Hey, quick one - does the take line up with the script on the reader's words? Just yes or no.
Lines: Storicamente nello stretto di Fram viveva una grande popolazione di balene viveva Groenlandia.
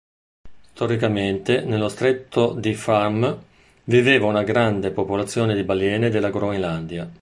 no